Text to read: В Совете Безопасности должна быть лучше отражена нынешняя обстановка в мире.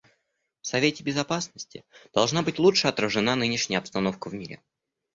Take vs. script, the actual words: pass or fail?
pass